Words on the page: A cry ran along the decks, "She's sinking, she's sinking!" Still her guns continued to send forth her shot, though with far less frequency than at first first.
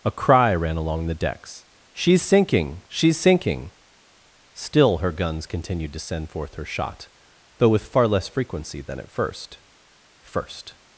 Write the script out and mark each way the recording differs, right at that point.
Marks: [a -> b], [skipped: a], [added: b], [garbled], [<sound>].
A cry ran along the decks, "She's sinking, she's sinking!" Still her guns continued to send forth her shot, though with far less frequency than at first first.